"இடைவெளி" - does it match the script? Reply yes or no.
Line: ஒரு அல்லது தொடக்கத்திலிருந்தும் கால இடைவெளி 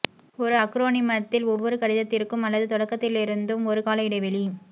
yes